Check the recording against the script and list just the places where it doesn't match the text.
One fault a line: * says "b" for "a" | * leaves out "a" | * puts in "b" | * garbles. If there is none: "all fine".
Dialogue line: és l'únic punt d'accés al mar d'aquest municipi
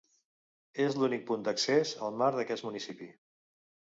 all fine